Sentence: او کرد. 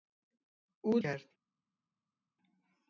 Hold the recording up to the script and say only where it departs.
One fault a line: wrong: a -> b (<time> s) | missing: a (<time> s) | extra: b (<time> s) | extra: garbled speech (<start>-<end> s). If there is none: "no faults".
no faults